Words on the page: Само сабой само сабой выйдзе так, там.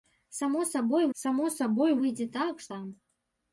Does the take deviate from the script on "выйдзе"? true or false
false